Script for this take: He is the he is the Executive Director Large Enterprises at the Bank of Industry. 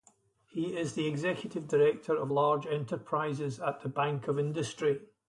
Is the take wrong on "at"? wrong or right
right